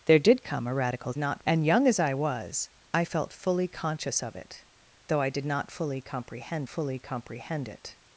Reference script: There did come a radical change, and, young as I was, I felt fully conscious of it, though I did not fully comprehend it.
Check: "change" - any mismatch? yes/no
yes